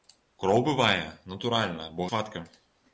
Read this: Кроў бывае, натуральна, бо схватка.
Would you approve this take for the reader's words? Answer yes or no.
yes